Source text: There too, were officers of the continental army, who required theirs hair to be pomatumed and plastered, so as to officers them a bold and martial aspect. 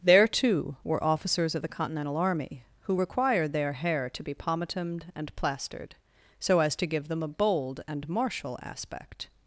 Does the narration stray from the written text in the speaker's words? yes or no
yes